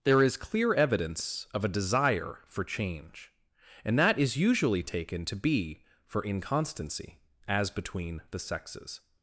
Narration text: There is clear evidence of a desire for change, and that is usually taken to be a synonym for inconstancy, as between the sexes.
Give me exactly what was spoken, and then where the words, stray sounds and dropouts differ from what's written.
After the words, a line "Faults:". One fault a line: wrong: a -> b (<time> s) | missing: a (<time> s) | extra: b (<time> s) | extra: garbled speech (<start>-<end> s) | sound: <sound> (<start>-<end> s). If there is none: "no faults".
There is clear evidence of a desire for change, and that is usually taken to be for inconstancy, as between the sexes.
Faults:
missing: a synonym (5.8 s)